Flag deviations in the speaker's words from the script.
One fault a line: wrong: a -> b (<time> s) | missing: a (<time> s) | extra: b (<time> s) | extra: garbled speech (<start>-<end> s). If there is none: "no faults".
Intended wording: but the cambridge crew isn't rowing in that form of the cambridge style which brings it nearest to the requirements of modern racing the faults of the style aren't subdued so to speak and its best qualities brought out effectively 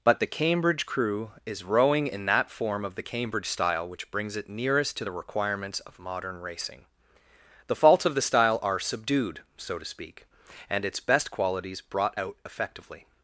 wrong: isn't -> is (1.4 s)
wrong: aren't -> are (8.6 s)